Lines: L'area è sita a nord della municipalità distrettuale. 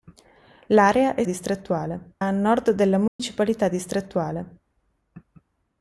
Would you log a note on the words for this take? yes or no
yes